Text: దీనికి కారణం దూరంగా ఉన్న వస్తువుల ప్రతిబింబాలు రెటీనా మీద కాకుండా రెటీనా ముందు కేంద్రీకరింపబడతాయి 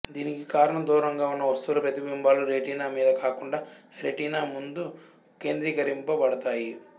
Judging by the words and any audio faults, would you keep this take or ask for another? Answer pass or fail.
pass